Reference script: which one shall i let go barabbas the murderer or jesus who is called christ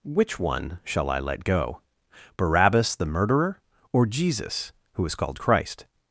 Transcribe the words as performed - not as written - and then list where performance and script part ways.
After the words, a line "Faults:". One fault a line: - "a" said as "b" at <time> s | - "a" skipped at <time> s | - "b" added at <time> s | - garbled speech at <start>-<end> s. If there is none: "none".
which one shall i let go barabbas the murderer or jesus who is called christ
Faults:
none